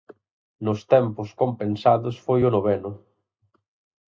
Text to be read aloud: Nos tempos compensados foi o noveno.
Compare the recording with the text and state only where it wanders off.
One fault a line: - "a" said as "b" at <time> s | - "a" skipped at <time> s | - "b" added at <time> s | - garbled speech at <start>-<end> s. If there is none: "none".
none